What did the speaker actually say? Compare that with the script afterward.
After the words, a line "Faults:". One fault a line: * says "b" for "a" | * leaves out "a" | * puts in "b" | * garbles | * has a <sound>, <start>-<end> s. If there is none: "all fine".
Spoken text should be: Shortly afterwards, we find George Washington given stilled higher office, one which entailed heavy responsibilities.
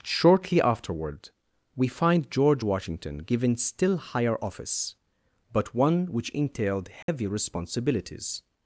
Shortly afterward, we find George Washington given still higher office, but one which entailed heavy responsibilities.
Faults:
* says "afterward" for "afterwards"
* says "still" for "stilled"
* puts in "but"
* has a dropout, 7.0-7.1 s